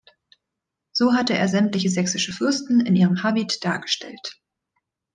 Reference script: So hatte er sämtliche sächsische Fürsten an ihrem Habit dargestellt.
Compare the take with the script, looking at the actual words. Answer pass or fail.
fail